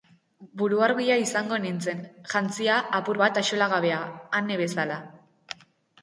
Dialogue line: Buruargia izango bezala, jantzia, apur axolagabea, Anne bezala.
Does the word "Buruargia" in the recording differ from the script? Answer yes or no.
no